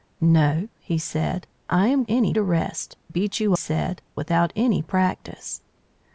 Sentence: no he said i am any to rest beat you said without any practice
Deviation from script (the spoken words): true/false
false